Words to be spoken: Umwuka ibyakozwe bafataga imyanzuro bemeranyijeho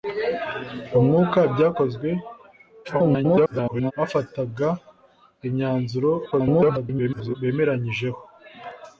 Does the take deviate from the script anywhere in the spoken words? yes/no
yes